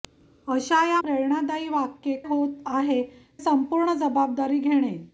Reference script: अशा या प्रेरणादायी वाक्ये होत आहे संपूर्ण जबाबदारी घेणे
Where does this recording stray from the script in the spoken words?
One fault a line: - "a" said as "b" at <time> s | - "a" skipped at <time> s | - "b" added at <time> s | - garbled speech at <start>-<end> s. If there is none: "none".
none